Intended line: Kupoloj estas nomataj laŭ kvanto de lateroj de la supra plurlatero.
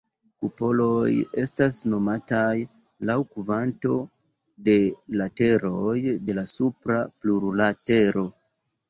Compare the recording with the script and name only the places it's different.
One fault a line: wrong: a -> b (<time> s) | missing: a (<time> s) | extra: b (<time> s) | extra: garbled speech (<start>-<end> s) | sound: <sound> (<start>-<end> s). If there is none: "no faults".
no faults